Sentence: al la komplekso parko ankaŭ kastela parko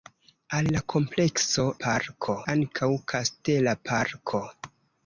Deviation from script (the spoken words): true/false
false